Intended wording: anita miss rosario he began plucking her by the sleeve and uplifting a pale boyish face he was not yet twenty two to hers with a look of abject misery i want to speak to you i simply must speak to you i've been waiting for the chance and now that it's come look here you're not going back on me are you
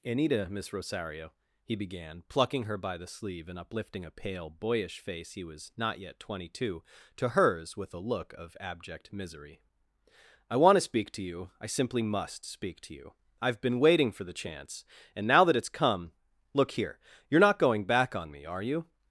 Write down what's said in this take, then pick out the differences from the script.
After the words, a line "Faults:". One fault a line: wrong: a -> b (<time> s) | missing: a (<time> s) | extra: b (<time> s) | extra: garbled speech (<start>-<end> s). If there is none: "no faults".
anita miss rosario he began plucking her by the sleeve and uplifting a pale boyish face he was not yet twenty two to hers with a look of abject misery i want to speak to you i simply must speak to you i've been waiting for the chance and now that it's come look here you're not going back on me are you
Faults:
no faults